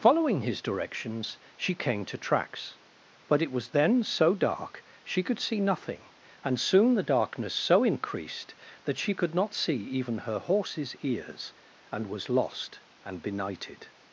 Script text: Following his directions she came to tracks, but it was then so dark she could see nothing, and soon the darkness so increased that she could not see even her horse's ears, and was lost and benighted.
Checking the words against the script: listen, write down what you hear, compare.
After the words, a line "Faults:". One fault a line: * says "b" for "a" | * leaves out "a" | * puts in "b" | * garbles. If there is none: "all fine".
Following his directions she came to tracks, but it was then so dark she could see nothing, and soon the darkness so increased that she could not see even her horse's ears, and was lost and benighted.
Faults:
all fine